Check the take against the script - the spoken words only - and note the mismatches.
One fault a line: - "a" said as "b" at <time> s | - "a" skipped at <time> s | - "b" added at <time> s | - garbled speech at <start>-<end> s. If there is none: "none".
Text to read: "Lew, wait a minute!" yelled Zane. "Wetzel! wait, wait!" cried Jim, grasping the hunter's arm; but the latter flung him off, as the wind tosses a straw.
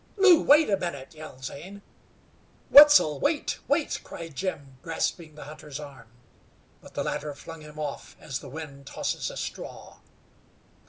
none